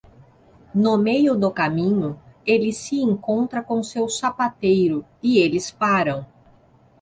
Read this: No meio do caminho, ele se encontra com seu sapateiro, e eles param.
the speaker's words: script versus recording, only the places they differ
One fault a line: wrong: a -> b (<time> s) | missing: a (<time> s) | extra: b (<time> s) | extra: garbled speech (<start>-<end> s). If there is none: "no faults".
no faults